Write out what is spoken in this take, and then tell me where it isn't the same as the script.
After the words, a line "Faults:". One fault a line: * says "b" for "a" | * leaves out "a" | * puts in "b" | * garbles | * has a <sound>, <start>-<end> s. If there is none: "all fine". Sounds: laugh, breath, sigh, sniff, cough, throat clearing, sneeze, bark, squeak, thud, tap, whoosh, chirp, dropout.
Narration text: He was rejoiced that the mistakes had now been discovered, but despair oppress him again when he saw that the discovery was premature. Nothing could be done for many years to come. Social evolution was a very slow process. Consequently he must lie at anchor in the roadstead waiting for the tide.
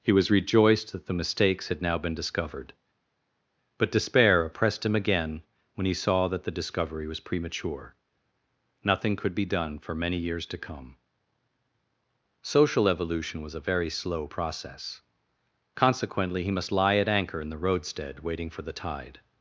He was rejoiced that the mistakes had now been discovered, but despair oppressed him again when he saw that the discovery was premature. Nothing could be done for many years to come. Social evolution was a very slow process. Consequently he must lie at anchor in the roadstead waiting for the tide.
Faults:
* says "oppressed" for "oppress"